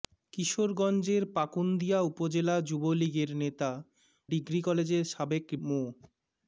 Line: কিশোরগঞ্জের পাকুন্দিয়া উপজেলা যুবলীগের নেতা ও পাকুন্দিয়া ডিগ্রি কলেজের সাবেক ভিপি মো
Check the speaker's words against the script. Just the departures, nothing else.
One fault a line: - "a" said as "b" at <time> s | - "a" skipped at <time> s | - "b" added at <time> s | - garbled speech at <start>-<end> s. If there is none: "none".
- "ও পাকুন্দিয়া" skipped at 3.7 s
- "ভিপি" skipped at 5.5 s